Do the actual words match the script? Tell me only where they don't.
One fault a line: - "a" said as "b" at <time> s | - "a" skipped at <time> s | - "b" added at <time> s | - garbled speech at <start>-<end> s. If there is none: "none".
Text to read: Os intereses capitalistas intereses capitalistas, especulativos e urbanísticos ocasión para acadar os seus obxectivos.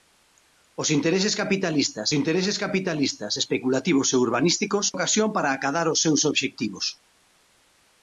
none